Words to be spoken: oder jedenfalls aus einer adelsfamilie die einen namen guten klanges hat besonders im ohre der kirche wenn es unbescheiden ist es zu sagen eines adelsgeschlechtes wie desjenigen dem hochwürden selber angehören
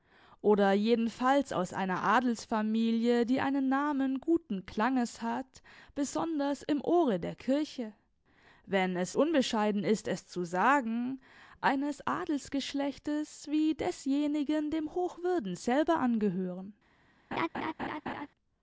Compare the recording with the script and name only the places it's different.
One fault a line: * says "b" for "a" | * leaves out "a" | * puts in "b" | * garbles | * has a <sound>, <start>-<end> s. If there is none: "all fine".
* has a laugh, 17.3-18.3 s